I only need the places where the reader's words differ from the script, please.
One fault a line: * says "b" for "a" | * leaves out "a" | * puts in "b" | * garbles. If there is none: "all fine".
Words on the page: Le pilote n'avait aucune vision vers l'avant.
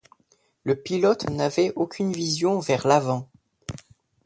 all fine